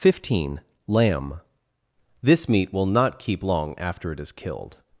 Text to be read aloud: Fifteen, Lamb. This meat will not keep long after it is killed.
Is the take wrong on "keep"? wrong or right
right